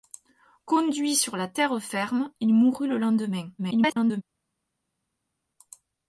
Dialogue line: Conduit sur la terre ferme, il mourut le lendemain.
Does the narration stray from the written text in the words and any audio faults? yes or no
yes